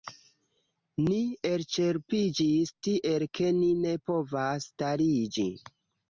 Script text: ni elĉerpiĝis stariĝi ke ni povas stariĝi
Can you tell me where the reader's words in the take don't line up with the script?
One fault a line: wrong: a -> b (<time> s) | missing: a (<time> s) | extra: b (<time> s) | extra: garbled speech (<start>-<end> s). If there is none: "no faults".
wrong: stariĝi -> tiel (2.9 s)
extra: ne (3.8 s)